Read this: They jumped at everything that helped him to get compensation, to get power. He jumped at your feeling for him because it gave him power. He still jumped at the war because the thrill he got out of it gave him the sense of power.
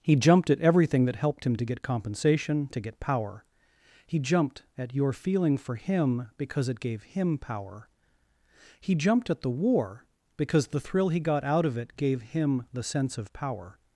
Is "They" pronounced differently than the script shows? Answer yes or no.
yes